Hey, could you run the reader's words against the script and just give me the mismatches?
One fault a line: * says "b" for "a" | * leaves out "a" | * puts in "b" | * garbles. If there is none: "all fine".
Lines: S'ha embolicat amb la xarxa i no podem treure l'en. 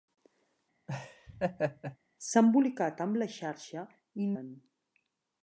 * leaves out "no podem treure"